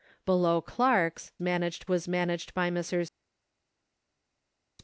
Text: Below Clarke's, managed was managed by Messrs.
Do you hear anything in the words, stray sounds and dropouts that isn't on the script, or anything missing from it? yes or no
no